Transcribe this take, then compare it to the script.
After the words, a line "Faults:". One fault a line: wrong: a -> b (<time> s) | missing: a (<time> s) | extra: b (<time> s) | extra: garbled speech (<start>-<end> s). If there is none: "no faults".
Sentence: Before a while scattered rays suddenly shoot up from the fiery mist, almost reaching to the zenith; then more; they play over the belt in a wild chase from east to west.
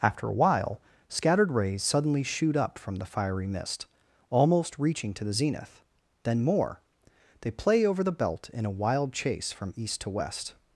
After a while scattered rays suddenly shoot up from the fiery mist, almost reaching to the zenith; then more; they play over the belt in a wild chase from east to west.
Faults:
wrong: Before -> After (0.0 s)